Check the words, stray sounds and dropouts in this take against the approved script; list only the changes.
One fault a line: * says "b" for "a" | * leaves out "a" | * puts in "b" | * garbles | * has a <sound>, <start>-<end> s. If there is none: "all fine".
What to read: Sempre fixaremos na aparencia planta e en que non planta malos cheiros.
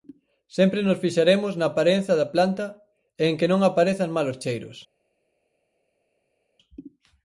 * puts in "nos"
* puts in "da"
* says "aparezan" for "planta"